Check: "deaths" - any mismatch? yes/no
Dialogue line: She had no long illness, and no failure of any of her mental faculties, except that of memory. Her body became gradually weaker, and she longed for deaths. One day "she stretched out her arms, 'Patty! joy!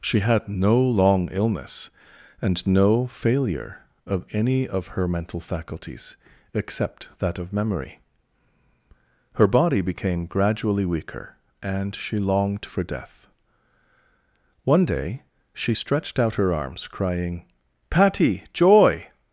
yes